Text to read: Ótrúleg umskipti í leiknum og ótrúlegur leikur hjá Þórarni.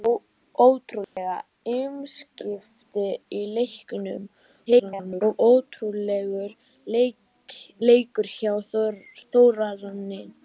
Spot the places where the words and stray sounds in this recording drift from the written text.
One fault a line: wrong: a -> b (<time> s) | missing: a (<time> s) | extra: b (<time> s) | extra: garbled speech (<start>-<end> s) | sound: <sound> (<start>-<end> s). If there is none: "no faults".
sound: dropout (1.0-1.2 s)
extra: garbled speech (4.7-5.2 s)